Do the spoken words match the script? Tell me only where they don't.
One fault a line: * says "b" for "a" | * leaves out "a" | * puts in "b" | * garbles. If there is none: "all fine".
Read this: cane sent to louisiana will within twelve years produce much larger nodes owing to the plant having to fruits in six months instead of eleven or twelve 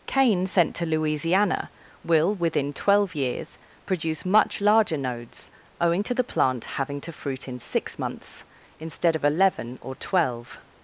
* says "fruit" for "fruits"